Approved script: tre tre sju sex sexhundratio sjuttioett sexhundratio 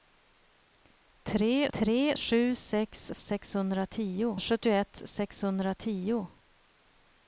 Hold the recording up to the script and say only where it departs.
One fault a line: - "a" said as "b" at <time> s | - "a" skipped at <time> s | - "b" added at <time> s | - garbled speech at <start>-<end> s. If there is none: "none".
none